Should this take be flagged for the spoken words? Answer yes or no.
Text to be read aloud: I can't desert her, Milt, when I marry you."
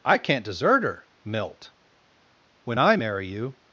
no